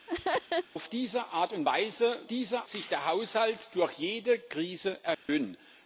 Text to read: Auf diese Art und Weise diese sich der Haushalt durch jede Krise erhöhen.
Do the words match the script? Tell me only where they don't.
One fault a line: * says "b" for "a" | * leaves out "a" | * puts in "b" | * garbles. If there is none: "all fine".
all fine